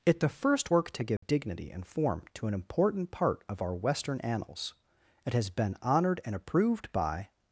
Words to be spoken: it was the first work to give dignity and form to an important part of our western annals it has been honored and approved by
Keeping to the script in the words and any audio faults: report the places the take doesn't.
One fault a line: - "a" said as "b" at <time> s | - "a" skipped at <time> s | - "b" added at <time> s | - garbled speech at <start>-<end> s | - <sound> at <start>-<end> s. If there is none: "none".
- "was" skipped at 0.2 s
- dropout at 1.2-1.2 s